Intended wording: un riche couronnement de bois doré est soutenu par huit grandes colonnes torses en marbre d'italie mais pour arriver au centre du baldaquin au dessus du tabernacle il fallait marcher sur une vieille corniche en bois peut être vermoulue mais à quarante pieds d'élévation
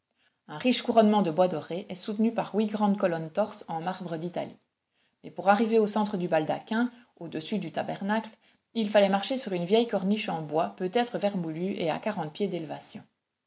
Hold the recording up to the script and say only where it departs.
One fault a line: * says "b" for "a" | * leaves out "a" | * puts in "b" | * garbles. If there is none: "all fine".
* says "et" for "mais"